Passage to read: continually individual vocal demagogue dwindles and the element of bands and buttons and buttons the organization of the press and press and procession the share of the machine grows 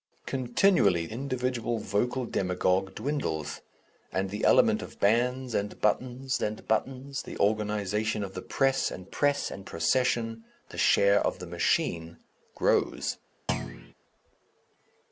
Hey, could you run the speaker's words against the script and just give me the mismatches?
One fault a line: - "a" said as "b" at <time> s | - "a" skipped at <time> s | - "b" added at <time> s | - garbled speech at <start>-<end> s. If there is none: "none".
none